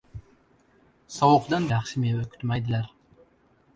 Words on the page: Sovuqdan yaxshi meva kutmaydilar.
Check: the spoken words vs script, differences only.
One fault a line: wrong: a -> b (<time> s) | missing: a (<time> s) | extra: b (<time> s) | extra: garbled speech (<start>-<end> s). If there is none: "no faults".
no faults